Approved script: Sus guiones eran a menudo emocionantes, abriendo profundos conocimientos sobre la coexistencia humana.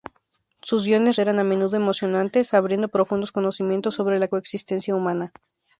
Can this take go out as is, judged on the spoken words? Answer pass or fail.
pass